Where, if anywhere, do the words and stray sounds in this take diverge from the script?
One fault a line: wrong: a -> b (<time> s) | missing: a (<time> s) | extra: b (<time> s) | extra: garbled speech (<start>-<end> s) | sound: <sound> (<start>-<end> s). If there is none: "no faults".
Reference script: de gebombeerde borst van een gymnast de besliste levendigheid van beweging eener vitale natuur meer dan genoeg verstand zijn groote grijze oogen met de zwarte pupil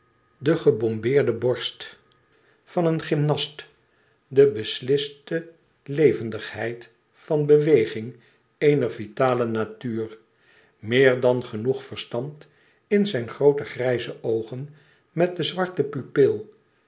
extra: in (12.9 s)